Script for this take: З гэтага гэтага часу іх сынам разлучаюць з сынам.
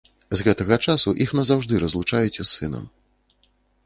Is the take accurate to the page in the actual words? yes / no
no